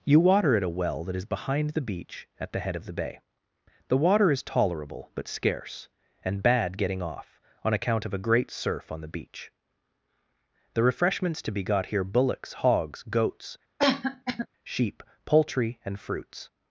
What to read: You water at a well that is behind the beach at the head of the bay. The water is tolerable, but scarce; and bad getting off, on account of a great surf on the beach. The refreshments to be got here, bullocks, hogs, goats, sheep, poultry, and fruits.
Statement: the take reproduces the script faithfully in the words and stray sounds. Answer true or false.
false